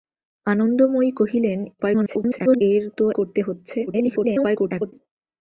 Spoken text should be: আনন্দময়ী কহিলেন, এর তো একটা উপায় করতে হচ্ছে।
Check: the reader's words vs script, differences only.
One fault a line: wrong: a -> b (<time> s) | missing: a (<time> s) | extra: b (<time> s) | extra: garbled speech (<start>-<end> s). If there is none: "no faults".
extra: garbled speech (1.8-2.6 s)
missing: একটা উপায় (3.0 s)
extra: garbled speech (3.9-4.9 s)